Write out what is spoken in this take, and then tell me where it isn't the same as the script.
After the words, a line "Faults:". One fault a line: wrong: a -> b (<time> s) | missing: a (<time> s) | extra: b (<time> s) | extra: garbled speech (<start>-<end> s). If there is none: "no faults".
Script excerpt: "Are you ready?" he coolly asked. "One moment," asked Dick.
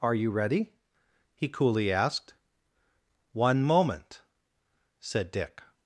"Are you ready?" he coolly asked. "One moment," said Dick.
Faults:
wrong: asked -> said (5.0 s)